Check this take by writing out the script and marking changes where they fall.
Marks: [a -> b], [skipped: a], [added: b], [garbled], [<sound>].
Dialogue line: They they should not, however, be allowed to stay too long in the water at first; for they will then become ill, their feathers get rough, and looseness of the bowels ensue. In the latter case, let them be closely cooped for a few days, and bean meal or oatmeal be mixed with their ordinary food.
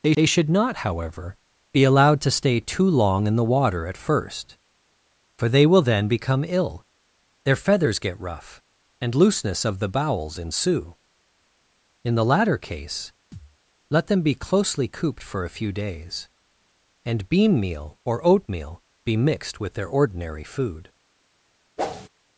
They they should not, however, be allowed to stay too long in the water at first; for they will then become ill, their feathers get rough, and looseness of the bowels ensue. In the latter case, [thud] let them be closely cooped for a few days, and bean meal or oatmeal be mixed with their ordinary food. [whoosh]